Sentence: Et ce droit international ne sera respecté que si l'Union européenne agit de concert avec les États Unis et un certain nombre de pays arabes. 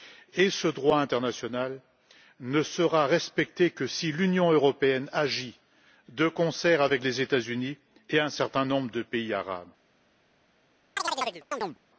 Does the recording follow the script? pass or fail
pass